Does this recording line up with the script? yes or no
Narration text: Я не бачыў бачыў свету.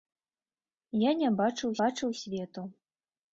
yes